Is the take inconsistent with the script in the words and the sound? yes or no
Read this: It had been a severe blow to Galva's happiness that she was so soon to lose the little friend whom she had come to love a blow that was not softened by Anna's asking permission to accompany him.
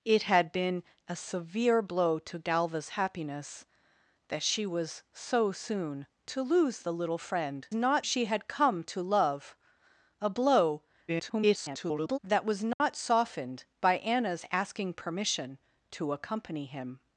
yes